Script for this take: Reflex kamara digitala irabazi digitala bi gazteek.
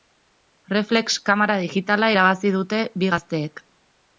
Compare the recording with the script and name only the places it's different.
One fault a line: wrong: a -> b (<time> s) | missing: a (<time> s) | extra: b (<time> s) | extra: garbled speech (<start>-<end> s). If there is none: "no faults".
wrong: digitala -> dute (2.6 s)